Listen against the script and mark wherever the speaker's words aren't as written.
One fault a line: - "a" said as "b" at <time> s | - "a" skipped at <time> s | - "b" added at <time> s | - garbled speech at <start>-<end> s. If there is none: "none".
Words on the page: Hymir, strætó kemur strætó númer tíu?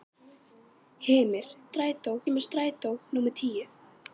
none